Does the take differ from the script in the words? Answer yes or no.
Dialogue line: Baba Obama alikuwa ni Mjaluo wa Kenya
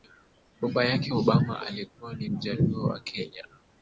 yes